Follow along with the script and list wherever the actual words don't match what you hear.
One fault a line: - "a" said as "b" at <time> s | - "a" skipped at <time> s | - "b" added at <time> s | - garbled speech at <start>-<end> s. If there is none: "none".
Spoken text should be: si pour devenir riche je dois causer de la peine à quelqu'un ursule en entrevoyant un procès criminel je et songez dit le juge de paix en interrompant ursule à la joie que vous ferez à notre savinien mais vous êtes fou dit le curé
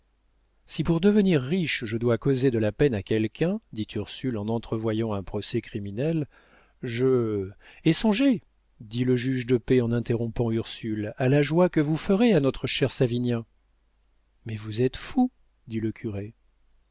- "dit" added at 3.7 s
- "cher" added at 12.7 s